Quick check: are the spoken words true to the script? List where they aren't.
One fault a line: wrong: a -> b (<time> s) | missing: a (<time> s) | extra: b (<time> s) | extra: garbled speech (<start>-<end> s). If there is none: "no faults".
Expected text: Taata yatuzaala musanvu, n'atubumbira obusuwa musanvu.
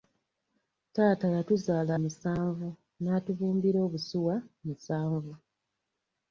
no faults